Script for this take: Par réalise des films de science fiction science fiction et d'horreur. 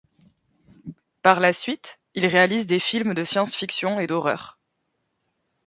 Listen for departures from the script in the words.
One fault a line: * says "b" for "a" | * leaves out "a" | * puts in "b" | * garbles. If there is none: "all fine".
* puts in "la suite il"
* leaves out "science fiction"